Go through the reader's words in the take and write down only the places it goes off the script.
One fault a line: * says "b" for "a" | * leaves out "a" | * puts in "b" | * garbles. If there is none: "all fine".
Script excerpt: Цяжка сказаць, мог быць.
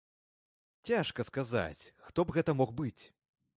* puts in "хто б гэта"